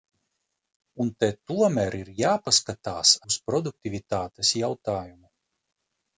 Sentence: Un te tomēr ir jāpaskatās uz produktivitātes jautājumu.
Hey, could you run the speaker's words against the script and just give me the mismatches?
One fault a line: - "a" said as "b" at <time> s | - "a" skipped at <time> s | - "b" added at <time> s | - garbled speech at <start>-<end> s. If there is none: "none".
none